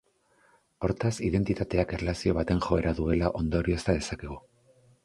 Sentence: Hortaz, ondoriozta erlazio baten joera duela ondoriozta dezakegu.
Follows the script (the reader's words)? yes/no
no